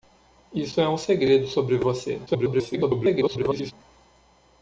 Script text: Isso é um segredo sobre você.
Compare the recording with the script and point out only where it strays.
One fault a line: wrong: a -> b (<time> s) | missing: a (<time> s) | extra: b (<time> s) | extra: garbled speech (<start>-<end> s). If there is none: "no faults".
extra: garbled speech (2.3-3.7 s)